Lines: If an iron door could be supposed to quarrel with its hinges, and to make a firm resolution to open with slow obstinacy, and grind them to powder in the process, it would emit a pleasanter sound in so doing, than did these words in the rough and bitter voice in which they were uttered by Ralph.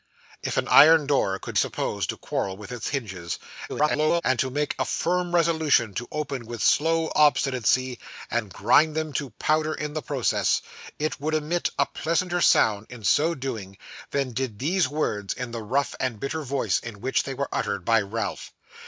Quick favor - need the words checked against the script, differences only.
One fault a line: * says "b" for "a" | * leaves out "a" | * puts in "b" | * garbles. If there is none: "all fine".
* leaves out "be"
* garbles